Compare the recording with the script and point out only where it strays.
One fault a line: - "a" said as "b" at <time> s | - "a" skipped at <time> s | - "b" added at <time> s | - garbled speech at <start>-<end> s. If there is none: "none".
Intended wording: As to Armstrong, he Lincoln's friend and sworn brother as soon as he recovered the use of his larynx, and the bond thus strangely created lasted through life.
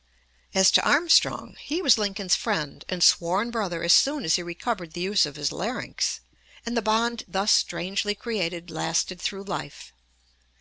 - "was" added at 1.8 s